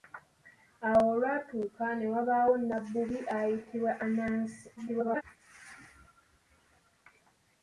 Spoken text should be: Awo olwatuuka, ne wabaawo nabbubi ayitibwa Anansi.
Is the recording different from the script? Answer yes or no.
yes